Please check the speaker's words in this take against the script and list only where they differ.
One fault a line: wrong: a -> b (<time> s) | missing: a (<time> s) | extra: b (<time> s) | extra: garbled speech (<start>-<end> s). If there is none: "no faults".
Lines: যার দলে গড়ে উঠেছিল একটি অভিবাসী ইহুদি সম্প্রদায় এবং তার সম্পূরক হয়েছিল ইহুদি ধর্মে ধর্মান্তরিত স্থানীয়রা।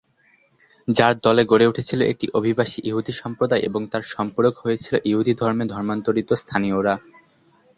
no faults